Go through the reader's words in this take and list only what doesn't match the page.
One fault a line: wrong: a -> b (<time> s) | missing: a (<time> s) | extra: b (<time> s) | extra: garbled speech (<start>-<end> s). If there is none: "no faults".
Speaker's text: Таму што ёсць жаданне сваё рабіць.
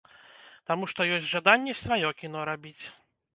extra: кіно (2.2 s)